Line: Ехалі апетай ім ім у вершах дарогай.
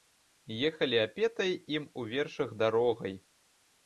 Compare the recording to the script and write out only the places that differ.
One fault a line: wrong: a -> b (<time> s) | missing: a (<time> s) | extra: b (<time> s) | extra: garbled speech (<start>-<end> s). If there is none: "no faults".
missing: ім (1.9 s)